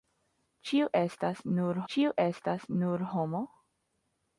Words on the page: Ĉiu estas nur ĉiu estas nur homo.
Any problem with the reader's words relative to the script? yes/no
no